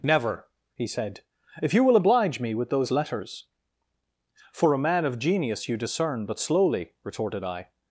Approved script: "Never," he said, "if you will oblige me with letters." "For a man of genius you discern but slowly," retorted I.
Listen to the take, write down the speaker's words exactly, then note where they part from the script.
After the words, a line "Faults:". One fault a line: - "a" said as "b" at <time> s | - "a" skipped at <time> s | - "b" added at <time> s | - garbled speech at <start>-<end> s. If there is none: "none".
"Never," he said, "if you will oblige me with those letters." "For a man of genius you discern but slowly," retorted I.
Faults:
- "those" added at 2.7 s